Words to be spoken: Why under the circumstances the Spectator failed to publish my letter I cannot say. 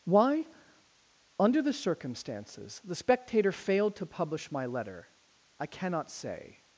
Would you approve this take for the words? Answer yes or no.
yes